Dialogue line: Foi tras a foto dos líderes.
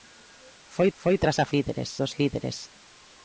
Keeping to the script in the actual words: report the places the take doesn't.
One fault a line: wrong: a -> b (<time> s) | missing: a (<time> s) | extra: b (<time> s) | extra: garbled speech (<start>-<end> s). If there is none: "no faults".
extra: foi (1.0 s)
wrong: foto -> líderes (1.5 s)